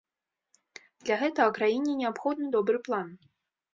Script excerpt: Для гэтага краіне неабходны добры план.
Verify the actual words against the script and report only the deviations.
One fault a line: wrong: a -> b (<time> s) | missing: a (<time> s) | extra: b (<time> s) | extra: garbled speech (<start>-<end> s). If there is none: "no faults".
no faults